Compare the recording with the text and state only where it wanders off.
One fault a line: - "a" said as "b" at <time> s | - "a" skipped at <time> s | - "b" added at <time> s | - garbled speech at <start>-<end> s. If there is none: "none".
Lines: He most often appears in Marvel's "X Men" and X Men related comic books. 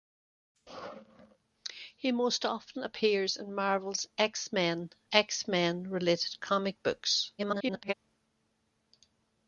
- "and" skipped at 4.9 s
- garbled speech at 7.4-7.9 s